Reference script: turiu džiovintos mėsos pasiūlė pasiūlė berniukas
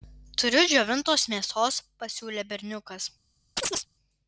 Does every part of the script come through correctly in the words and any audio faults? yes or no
no